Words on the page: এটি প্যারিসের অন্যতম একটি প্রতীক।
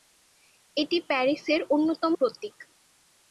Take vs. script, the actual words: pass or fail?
fail